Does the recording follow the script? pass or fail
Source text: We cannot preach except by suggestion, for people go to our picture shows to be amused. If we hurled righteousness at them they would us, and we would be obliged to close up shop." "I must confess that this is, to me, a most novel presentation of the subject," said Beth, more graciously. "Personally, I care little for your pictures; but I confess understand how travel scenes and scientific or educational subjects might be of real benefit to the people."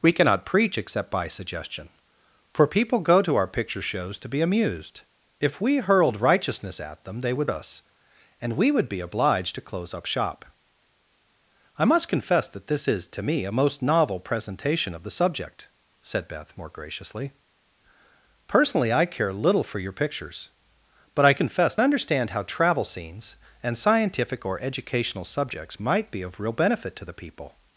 pass